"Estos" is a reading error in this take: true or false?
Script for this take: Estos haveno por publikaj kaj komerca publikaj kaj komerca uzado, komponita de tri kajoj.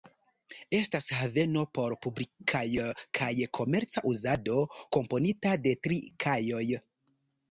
true